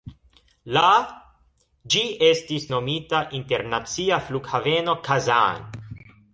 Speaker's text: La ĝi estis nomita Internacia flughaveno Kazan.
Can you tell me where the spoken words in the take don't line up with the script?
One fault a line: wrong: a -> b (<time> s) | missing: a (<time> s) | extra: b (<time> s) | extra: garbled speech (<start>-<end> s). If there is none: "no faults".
no faults